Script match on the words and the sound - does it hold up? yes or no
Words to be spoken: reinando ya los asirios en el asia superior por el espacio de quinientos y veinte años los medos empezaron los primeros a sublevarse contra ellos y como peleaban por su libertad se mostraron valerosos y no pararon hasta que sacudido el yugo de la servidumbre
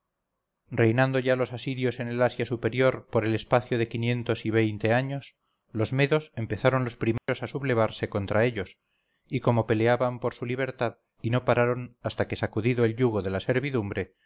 no